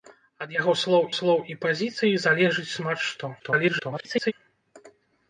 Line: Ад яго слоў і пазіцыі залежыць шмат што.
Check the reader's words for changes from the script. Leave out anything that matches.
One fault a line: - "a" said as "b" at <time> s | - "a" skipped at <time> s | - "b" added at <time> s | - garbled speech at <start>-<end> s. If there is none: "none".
- "слоў" added at 1.2 s
- garbled speech at 3.4-4.3 s